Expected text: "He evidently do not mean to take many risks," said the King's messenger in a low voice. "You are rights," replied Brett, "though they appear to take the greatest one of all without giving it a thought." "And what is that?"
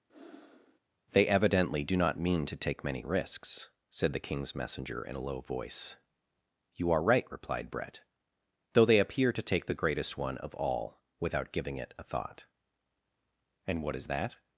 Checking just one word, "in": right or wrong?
right